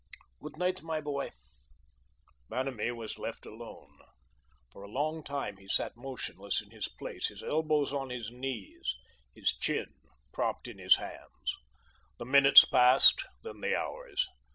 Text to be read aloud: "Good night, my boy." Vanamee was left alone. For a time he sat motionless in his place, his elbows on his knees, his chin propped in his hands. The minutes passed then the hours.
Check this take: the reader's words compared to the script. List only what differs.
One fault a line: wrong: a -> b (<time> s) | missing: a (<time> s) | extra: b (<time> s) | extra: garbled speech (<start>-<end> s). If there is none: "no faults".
extra: long (4.9 s)